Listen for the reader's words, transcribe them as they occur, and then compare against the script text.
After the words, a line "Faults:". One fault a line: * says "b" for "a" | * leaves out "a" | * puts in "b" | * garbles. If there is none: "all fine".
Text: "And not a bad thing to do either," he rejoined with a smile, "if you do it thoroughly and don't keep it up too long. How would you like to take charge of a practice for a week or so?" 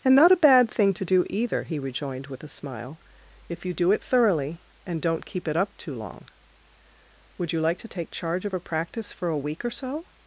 "And not a bad thing to do either," he rejoined with a smile, "if you do it thoroughly and don't keep it up too long. would you like to take charge of a practice for a week or so?"
Faults:
* leaves out "How"